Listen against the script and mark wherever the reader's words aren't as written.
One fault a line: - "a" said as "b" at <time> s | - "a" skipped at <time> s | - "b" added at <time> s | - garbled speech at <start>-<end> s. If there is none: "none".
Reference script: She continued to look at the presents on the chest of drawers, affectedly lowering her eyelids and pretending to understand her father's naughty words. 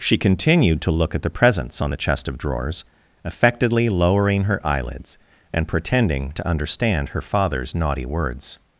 none